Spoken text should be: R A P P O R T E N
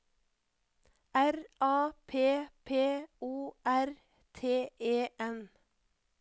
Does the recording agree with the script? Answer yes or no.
yes